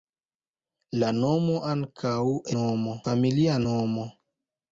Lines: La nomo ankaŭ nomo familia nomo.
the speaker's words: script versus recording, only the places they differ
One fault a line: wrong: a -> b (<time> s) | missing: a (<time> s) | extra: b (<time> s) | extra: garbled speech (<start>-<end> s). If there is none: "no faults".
no faults